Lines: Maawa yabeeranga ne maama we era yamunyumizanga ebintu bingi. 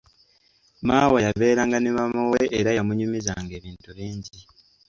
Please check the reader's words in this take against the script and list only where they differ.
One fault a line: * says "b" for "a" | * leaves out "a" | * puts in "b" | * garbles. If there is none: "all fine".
all fine